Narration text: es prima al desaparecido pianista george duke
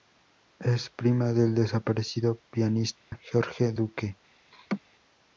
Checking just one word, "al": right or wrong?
wrong